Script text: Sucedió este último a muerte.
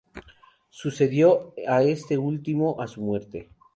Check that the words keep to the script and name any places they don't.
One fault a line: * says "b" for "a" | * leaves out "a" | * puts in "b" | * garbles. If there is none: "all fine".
* puts in "a"
* puts in "su"